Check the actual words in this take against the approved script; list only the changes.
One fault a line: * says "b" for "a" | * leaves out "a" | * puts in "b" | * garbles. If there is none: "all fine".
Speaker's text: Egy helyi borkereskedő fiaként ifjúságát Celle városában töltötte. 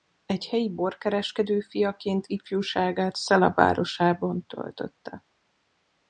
all fine